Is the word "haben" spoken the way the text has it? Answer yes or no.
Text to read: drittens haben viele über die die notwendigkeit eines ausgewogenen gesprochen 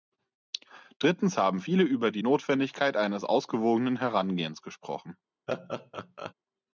yes